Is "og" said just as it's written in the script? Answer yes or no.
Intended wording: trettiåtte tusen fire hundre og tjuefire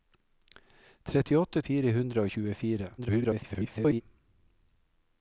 yes